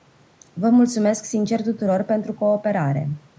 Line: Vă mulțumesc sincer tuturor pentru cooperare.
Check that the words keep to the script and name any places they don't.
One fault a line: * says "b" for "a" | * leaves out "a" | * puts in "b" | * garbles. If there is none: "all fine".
all fine